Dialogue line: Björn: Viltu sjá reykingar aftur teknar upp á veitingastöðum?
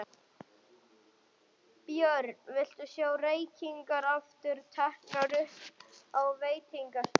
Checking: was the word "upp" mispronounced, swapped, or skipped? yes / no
no